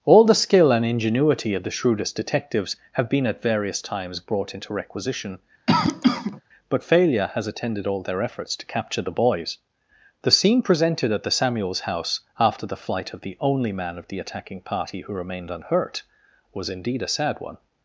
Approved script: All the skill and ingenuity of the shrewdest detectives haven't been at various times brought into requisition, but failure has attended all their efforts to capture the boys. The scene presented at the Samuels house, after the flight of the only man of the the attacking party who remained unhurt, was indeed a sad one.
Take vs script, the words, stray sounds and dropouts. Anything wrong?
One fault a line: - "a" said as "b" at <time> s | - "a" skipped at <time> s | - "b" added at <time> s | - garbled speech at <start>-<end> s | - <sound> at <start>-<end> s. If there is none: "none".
- "haven't" said as "have" at 2.9 s
- cough at 5.7-6.4 s
- "the" skipped at 14.2 s